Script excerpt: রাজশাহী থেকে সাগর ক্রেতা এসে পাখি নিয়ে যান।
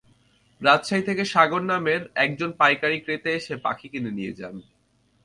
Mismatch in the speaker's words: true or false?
true